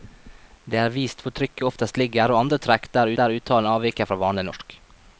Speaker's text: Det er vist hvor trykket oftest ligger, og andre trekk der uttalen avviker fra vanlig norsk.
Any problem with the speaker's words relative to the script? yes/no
yes